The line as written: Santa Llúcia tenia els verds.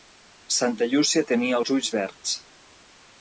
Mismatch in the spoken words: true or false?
true